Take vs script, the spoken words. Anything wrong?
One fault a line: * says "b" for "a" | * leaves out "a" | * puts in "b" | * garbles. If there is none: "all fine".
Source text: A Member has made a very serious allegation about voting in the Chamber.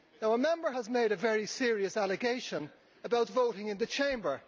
all fine